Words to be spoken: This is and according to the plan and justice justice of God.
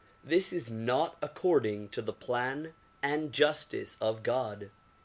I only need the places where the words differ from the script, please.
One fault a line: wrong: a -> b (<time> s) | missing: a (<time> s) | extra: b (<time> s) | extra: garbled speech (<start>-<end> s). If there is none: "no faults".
wrong: and -> not (0.7 s)
missing: justice (4.0 s)